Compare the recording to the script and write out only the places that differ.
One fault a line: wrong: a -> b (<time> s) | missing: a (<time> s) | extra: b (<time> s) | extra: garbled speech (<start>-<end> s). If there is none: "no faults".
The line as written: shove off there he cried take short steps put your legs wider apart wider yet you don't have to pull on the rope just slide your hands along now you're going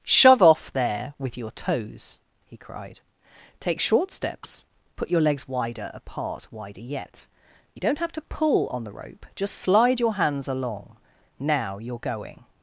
extra: with your toes (1.2 s)